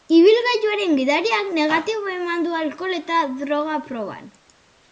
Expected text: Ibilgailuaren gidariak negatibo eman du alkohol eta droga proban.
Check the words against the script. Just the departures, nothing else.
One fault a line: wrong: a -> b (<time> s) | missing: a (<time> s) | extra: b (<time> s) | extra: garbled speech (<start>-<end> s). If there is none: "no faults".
no faults